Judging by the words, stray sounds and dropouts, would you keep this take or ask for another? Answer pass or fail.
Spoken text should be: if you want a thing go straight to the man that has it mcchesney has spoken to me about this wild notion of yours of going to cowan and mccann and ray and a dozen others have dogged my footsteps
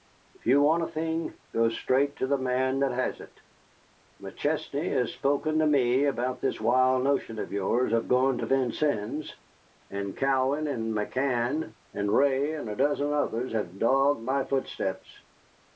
fail